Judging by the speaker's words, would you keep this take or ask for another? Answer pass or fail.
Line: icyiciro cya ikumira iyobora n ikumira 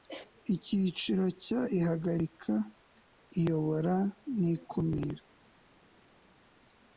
fail